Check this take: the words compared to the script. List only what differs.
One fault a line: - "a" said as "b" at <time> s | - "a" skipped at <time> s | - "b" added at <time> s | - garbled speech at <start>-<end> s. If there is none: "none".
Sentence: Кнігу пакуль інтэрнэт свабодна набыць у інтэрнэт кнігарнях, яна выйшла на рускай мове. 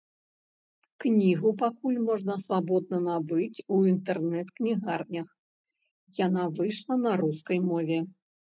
- "інтэрнэт" said as "можна" at 2.1 s